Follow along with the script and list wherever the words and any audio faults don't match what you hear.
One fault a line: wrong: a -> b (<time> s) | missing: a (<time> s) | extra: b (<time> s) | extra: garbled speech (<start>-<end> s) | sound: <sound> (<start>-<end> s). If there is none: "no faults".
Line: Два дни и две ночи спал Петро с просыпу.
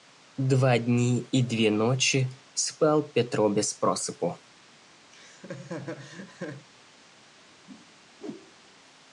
wrong: с -> без (3.5 s)
sound: laugh (5.1-6.7 s)
sound: whoosh (7.7-8.7 s)